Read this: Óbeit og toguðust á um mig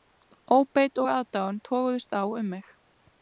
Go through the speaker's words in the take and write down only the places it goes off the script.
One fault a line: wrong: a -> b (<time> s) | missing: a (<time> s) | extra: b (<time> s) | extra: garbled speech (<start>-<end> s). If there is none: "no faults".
extra: aðdáun (1.2 s)